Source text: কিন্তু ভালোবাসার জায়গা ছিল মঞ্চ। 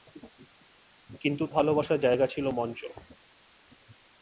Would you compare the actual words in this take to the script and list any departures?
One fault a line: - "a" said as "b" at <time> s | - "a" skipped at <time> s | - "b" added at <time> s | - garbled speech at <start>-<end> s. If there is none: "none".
none